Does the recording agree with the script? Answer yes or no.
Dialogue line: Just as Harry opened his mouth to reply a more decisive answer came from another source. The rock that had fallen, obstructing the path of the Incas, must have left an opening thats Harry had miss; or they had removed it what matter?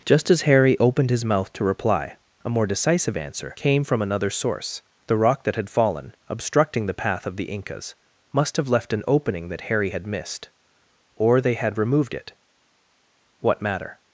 no